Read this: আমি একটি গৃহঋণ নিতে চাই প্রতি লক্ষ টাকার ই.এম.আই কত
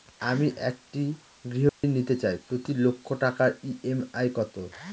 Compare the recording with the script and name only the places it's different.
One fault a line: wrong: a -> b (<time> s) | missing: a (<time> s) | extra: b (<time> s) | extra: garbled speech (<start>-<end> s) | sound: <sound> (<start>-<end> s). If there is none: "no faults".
sound: dropout (1.7-1.8 s)